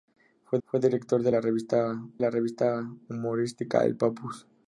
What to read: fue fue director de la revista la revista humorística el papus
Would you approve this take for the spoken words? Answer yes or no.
yes